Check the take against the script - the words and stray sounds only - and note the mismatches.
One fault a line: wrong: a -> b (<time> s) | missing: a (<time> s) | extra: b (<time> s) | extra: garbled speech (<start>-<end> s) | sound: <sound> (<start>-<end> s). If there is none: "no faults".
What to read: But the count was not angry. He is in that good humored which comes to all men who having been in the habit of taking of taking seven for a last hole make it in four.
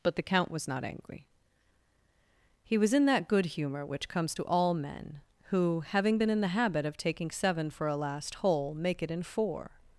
wrong: is -> was (2.8 s)
wrong: humored -> humor (3.5 s)
missing: of taking (7.3 s)